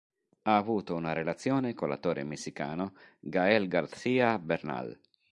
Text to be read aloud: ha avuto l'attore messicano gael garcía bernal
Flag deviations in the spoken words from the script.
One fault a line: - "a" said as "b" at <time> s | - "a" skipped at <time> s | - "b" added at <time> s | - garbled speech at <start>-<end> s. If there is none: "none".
- "una relazione con" added at 0.9 s